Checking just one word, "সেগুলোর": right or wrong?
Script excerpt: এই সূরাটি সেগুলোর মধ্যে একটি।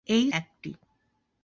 wrong